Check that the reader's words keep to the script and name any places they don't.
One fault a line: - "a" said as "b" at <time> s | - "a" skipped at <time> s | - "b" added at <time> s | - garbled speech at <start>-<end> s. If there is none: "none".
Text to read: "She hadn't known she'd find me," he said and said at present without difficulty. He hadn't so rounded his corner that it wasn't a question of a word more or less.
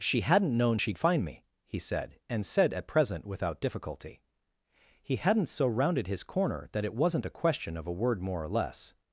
none